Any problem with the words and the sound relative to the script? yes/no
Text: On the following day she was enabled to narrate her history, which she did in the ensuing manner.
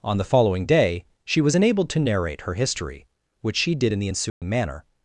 yes